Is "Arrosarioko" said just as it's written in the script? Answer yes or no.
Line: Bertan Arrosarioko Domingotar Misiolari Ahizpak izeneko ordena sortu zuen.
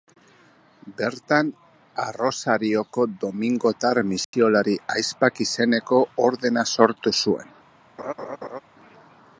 yes